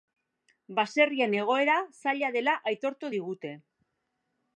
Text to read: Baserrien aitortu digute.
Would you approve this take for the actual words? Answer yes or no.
no